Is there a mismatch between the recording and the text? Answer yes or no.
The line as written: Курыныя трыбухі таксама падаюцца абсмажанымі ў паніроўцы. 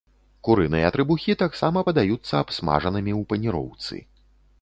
no